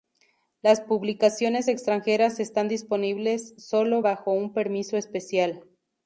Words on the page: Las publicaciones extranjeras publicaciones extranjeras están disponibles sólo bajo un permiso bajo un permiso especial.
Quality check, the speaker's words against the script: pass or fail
fail